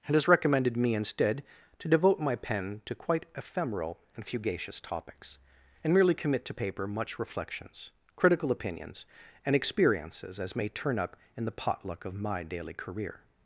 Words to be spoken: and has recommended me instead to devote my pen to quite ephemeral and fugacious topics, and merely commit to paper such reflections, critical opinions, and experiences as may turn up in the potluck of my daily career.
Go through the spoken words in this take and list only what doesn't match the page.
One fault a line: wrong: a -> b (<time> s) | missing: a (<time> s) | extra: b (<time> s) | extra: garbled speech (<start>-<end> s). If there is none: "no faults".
wrong: such -> much (6.9 s)